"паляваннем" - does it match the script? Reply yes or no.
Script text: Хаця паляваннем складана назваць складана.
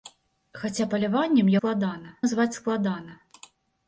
yes